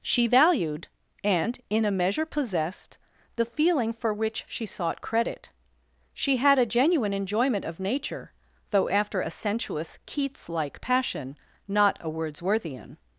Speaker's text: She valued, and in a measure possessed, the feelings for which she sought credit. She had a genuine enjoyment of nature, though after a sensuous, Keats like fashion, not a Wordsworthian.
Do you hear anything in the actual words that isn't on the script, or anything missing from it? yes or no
yes